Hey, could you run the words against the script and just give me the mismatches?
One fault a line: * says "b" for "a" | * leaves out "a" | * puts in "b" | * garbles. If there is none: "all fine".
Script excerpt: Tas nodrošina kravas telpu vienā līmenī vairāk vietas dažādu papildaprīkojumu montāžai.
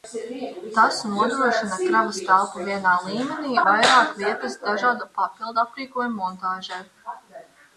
all fine